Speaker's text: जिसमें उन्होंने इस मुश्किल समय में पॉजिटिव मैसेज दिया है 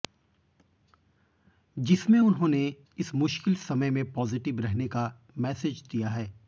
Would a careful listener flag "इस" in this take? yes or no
no